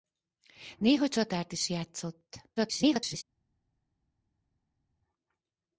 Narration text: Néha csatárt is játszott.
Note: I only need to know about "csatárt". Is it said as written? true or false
true